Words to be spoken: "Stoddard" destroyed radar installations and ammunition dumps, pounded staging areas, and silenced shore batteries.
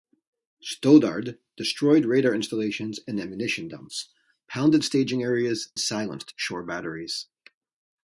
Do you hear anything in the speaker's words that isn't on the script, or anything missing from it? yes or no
yes